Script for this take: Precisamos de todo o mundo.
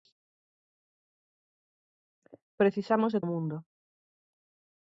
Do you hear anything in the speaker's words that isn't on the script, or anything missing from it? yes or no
yes